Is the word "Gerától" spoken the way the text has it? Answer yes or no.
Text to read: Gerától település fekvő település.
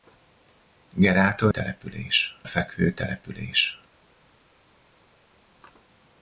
yes